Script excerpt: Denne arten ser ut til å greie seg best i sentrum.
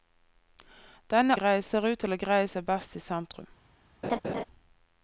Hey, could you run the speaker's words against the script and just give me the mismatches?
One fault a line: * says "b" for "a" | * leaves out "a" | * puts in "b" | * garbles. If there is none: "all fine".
* says "greie" for "arten"